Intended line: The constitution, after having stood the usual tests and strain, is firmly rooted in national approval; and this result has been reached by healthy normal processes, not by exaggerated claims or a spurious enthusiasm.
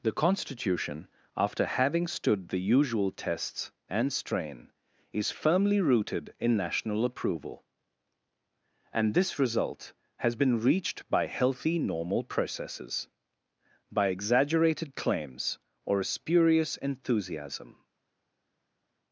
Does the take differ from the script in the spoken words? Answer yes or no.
yes